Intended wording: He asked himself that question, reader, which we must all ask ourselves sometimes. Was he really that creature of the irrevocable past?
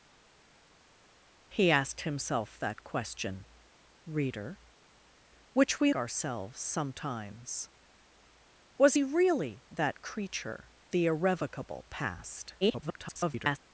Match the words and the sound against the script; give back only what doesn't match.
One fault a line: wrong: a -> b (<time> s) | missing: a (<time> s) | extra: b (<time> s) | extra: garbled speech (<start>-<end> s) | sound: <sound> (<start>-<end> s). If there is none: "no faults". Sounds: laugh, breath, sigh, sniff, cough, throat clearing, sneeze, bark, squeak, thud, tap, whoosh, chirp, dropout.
missing: must all ask (5.9 s)
missing: of (10.7 s)
extra: garbled speech (12.6-13.6 s)